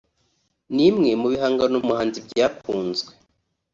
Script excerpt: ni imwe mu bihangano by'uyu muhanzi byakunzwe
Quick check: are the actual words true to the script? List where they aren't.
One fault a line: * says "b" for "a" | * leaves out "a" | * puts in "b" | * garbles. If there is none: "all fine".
* leaves out "by'uyu"